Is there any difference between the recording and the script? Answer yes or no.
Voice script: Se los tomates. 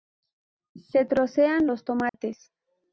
yes